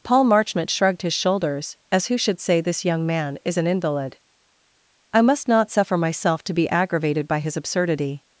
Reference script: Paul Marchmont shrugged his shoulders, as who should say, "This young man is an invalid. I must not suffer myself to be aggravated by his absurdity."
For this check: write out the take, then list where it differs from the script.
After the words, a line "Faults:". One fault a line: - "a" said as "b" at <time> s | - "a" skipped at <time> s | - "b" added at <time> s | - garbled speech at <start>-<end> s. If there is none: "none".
Paul Marchmont shrugged his shoulders, as who should say, "This young man is an invalid. I must not suffer myself to be aggravated by his absurdity."
Faults:
none